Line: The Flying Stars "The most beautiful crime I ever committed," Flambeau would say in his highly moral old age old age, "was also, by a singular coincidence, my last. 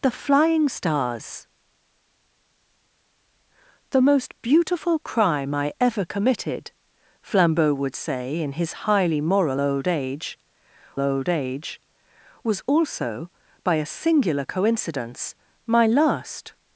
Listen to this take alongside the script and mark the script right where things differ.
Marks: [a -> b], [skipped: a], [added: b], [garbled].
The Flying Stars "The most beautiful crime I ever committed," Flambeau would say in his highly moral old age old age, "was also, by a singular coincidence, my last.